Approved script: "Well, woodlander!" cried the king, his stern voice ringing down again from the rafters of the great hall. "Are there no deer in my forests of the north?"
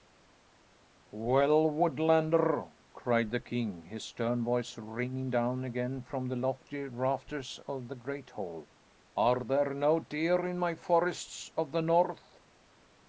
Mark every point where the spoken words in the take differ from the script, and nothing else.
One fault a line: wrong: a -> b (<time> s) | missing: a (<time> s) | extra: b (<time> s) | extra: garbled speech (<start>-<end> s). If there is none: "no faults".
extra: lofty (6.4 s)